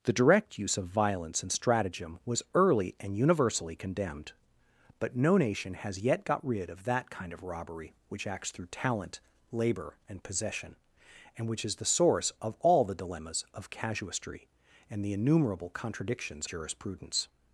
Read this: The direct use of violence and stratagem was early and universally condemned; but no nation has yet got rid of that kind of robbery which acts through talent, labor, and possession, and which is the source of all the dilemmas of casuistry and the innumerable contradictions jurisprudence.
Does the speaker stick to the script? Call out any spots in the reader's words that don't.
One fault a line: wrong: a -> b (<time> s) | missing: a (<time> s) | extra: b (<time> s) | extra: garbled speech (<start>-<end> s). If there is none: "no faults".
no faults